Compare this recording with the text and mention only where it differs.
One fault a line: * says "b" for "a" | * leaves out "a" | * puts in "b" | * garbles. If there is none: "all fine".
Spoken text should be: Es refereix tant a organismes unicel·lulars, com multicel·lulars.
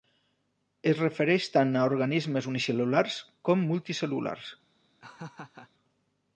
all fine